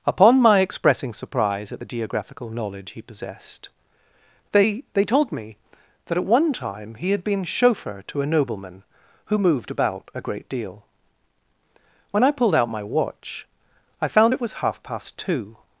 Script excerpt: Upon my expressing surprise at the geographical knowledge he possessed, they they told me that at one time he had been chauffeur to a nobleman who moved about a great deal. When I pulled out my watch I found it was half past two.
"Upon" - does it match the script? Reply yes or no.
yes